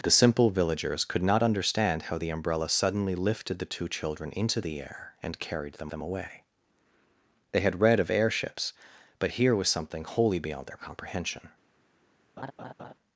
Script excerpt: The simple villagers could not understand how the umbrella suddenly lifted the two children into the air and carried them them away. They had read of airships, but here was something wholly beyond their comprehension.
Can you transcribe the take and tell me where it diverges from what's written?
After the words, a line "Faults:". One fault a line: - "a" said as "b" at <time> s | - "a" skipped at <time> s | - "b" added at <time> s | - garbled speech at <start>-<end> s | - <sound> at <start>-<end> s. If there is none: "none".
The simple villagers could not understand how the umbrella suddenly lifted the two children into the air and carried them them away. They had read of airships, but here was something wholly beyond their comprehension.
Faults:
- laugh at 12.4-12.9 s